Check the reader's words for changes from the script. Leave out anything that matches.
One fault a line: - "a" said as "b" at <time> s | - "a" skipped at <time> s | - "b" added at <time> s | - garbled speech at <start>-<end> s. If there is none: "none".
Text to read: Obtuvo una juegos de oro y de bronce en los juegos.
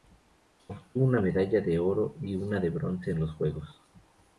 - "juegos" said as "medalla" at 1.2 s
- "una" added at 2.3 s